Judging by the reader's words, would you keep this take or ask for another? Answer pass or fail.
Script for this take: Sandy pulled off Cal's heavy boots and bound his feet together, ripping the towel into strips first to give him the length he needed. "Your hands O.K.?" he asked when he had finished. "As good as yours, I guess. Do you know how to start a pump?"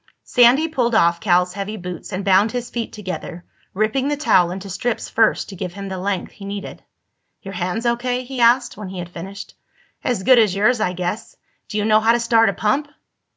pass